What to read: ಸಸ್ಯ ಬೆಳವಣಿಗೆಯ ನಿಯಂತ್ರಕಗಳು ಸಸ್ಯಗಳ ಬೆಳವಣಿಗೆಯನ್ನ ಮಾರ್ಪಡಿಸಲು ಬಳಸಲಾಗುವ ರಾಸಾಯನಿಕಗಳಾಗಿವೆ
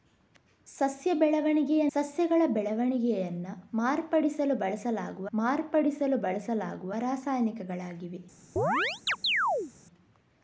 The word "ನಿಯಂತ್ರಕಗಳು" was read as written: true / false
false